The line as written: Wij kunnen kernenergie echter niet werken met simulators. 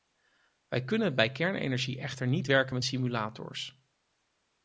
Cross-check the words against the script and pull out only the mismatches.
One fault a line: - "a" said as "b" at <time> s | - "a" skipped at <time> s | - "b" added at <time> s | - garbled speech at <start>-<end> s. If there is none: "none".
- "bij" added at 1.1 s